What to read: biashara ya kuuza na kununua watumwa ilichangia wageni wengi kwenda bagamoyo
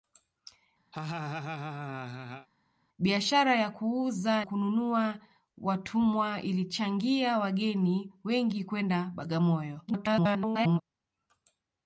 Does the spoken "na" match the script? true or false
false